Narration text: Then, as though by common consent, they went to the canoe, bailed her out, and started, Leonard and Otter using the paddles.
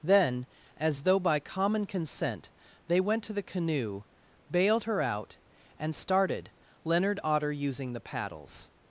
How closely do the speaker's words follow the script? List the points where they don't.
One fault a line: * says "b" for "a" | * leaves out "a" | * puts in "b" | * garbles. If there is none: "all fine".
* leaves out "and"